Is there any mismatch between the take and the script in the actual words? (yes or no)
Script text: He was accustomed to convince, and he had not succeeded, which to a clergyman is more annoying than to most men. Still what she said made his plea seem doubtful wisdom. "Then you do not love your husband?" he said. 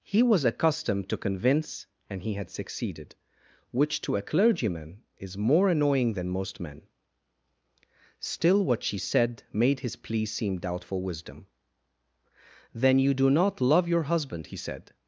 yes